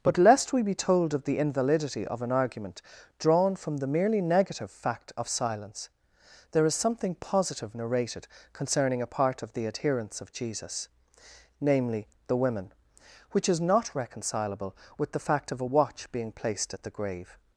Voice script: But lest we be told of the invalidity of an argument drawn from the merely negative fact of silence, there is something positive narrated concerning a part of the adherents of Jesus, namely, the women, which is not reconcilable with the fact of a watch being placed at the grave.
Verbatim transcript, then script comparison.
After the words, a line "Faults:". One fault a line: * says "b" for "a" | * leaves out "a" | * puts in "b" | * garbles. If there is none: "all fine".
But lest we be told of the invalidity of an argument drawn from the merely negative fact of silence, there is something positive narrated concerning a part of the adherents of Jesus, namely, the women, which is not reconcilable with the fact of a watch being placed at the grave.
Faults:
all fine